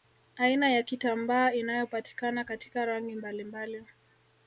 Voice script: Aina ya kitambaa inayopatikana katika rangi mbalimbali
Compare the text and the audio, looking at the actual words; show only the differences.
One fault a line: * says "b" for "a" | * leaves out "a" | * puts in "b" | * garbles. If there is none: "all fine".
all fine